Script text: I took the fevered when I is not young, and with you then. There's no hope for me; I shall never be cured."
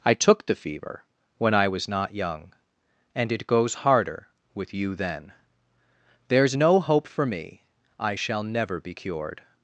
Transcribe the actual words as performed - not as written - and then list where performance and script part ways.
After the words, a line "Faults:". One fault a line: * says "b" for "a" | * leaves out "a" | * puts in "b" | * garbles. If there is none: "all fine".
I took the fever when I was not young, and it goes harder with you then. There's no hope for me; I shall never be cured."
Faults:
* says "fever" for "fevered"
* says "was" for "is"
* puts in "it goes harder"